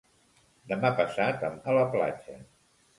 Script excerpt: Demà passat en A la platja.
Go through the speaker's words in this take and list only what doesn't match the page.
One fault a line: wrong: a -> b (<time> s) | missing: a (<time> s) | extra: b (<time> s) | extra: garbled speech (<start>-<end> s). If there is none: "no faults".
no faults